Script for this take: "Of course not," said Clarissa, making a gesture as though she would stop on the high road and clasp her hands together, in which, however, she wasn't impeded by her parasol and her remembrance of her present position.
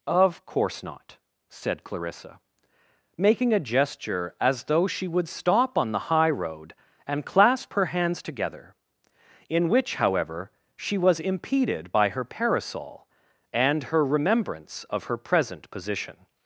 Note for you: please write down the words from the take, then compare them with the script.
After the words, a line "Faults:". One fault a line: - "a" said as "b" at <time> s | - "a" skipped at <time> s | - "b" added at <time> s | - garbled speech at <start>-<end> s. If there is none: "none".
"Of course not," said Clarissa, making a gesture as though she would stop on the high road and clasp her hands together, in which, however, she was impeded by her parasol and her remembrance of her present position.
Faults:
- "wasn't" said as "was" at 11.0 s